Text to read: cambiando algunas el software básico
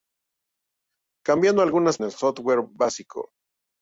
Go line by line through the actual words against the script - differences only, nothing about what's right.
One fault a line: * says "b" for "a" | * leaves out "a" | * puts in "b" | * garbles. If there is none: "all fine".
all fine